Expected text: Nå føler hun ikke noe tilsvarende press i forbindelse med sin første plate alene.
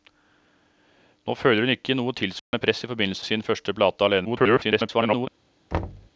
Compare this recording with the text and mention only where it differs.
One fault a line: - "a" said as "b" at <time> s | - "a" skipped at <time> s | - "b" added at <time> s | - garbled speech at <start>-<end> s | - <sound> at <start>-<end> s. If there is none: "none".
- dropout at 2.4-2.5 s
- "med" skipped at 3.3 s
- garbled speech at 4.2-5.3 s
- thud at 5.7-6.1 s